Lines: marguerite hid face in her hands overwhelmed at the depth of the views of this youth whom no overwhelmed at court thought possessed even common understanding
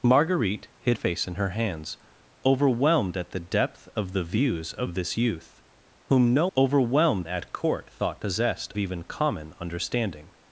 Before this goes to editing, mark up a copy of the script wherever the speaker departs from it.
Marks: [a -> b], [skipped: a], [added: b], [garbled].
marguerite hid face in her hands overwhelmed at the depth of the views of this youth whom no overwhelmed at court thought possessed even common understanding